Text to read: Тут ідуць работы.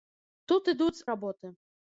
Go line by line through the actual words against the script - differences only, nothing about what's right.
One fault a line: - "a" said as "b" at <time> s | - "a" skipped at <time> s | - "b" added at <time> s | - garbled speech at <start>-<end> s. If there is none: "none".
none